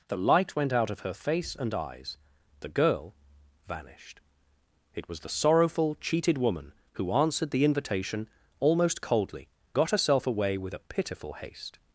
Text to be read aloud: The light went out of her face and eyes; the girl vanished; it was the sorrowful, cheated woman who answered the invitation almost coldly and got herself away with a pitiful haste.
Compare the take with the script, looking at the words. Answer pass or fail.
fail